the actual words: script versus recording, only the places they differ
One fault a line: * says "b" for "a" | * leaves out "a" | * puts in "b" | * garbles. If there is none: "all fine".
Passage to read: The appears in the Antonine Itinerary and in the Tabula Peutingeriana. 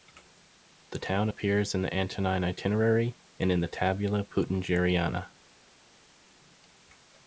* puts in "town"